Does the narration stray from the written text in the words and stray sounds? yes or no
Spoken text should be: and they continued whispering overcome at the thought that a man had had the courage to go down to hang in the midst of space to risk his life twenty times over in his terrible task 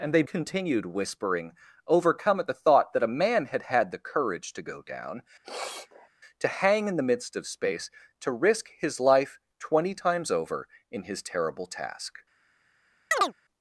yes